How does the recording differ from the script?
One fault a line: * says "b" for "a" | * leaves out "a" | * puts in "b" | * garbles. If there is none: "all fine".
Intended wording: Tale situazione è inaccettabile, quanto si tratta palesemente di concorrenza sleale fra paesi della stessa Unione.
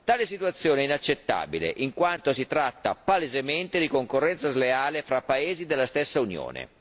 * puts in "in"